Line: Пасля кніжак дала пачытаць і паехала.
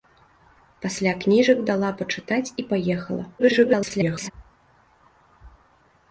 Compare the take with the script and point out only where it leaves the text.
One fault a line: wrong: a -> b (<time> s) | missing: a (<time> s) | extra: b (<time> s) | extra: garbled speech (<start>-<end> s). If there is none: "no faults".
extra: garbled speech (3.4-4.3 s)